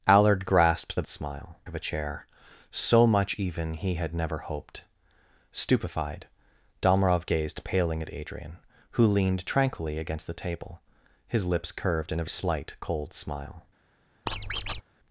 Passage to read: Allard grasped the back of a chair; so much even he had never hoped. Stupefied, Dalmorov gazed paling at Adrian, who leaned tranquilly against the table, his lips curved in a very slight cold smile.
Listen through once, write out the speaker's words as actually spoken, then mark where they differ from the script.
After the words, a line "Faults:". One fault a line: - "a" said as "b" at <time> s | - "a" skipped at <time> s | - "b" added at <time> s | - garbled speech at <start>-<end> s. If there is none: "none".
Allard grasped the smile of a chair; so much even he had never hoped. Stupefied, Dalmorov gazed paling at Adrian, who leaned tranquilly against the table, his lips curved in a slight cold smile.
Faults:
- "back" said as "smile" at 1.1 s
- "very" skipped at 12.3 s